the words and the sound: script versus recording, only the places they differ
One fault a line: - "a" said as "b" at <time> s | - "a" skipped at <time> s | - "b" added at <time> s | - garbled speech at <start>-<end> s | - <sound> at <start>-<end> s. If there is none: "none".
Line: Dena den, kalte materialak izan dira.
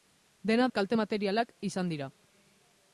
- "den" skipped at 0.7 s